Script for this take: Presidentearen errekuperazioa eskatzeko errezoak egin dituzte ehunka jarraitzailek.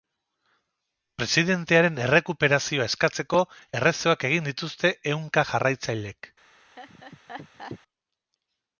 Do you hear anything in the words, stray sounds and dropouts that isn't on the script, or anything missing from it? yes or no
yes